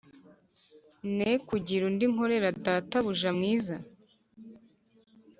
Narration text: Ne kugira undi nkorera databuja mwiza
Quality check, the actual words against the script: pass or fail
pass